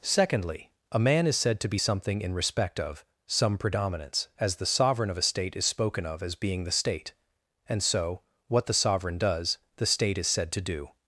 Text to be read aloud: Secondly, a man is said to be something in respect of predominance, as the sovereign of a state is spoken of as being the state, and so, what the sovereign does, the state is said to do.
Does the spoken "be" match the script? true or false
true